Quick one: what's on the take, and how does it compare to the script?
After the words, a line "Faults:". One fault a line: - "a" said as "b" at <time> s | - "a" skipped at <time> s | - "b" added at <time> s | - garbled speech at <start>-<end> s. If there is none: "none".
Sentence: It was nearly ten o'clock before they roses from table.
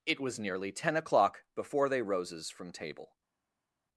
It was nearly ten o'clock before they roses from table.
Faults:
none